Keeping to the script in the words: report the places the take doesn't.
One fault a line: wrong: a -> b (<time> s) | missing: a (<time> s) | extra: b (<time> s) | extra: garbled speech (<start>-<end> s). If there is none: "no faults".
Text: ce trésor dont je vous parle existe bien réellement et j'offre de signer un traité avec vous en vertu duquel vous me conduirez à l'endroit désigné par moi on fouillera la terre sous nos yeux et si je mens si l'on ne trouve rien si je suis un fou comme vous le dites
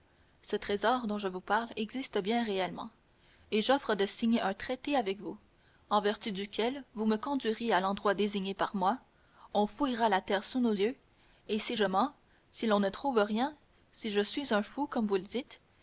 no faults